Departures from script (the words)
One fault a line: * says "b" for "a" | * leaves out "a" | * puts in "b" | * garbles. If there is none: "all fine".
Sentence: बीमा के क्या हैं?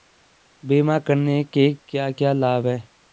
* puts in "करने"
* puts in "क्या लाभ"